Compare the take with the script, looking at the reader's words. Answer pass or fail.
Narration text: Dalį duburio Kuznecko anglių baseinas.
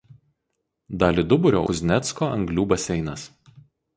pass